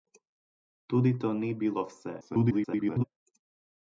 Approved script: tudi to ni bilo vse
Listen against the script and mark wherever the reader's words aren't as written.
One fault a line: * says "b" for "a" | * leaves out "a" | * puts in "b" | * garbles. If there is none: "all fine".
* garbles